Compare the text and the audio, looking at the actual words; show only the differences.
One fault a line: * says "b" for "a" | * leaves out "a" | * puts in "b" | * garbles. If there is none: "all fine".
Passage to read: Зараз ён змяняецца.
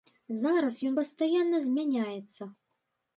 * puts in "пастаянна"